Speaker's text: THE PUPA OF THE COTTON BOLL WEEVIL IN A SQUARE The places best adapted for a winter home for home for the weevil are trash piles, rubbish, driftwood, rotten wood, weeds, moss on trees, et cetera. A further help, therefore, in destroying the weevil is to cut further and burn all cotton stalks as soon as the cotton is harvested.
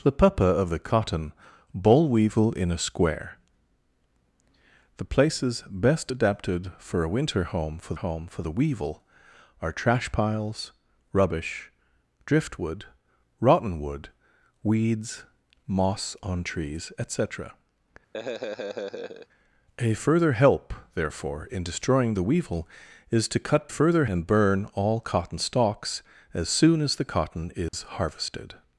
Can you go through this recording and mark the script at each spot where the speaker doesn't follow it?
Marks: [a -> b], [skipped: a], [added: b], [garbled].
THE PUPA OF THE COTTON BOLL WEEVIL IN A SQUARE The places best adapted for a winter home for home for the weevil are trash piles, rubbish, driftwood, rotten wood, weeds, moss on trees, et cetera. A further help, therefore, in destroying the weevil is to cut further and burn all cotton stalks as soon as the cotton is harvested.